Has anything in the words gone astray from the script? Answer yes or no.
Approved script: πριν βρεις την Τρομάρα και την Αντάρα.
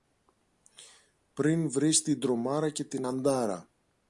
no